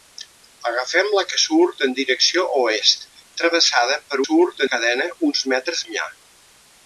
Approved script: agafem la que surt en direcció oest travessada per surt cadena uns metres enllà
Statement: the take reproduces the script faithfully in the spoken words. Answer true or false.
true